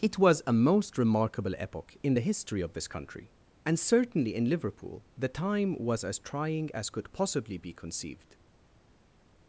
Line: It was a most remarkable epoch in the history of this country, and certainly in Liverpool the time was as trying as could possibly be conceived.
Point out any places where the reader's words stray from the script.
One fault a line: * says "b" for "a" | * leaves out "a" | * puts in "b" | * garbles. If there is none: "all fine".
all fine